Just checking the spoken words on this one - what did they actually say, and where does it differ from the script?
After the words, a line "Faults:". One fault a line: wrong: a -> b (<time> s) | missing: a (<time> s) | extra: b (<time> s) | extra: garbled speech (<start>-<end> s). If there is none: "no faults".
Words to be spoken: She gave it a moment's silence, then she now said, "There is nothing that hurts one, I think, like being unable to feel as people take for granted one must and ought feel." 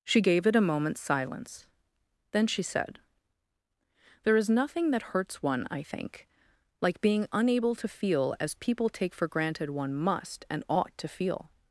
She gave it a moment's silence, then she said, "There is nothing that hurts one, I think, like being unable to feel as people take for granted one must and ought to feel."
Faults:
missing: now (2.6 s)
extra: to (11.0 s)